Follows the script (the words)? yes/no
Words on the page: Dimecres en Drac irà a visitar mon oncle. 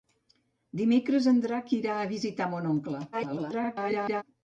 no